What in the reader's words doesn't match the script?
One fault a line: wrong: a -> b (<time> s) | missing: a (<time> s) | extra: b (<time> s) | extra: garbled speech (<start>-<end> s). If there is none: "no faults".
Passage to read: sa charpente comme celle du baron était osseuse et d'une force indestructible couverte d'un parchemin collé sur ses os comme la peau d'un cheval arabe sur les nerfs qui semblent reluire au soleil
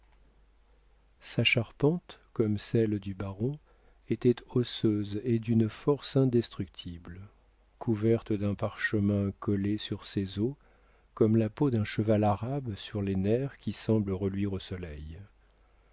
no faults